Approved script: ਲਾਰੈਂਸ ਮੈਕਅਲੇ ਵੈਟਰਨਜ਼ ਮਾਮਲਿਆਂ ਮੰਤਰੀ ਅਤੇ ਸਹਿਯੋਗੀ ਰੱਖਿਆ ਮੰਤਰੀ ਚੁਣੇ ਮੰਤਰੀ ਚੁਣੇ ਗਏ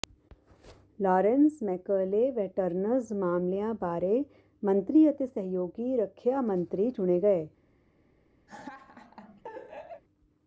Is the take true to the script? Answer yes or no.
no